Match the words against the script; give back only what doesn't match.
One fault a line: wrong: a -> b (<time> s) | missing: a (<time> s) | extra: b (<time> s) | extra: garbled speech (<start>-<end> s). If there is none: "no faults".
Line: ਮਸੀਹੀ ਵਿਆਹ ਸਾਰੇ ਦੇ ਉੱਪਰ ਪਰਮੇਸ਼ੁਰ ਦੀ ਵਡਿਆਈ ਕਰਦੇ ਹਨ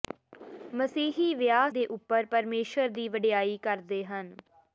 missing: ਸਾਰੇ (1.7 s)